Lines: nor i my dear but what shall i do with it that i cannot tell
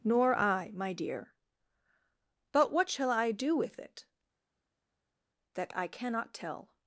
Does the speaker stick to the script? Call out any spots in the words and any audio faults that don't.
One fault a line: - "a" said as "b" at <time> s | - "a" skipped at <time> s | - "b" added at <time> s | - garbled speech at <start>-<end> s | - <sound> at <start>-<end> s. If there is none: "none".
none